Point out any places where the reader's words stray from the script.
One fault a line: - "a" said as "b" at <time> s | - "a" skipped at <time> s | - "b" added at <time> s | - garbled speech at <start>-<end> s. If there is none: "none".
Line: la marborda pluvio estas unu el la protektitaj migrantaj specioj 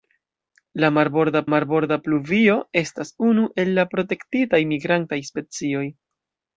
- "marborda" added at 1.5 s